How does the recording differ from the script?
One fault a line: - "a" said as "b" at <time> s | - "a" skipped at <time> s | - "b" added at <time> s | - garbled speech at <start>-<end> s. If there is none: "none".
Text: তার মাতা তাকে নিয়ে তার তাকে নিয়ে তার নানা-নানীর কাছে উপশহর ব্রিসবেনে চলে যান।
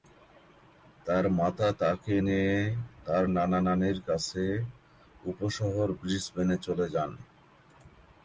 - "তাকে নিয়ে তার" skipped at 3.2 s